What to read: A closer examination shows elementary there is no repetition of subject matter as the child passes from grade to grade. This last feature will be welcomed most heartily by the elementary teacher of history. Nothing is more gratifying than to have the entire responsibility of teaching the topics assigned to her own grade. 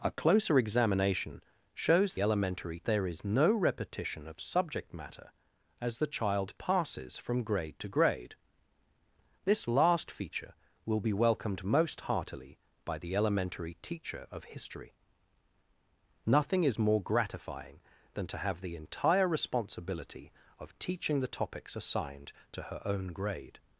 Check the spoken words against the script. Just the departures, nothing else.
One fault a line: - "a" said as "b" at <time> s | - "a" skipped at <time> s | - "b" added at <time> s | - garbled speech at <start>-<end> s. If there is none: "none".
none